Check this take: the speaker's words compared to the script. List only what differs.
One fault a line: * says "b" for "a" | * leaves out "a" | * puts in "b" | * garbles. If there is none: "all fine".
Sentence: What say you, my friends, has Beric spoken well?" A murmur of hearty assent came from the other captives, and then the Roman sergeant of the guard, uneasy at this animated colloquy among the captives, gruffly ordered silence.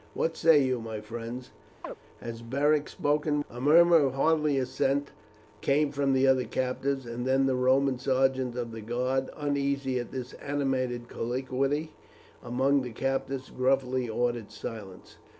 * leaves out "well"